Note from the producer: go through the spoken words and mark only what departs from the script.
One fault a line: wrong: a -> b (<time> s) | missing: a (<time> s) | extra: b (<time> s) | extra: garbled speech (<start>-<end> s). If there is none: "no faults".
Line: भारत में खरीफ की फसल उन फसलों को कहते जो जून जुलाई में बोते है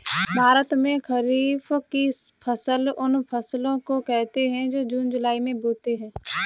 extra: है (4.5 s)